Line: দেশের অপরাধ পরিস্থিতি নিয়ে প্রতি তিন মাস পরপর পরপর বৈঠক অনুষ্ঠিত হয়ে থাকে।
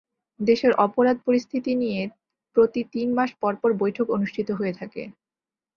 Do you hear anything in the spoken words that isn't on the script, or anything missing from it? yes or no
yes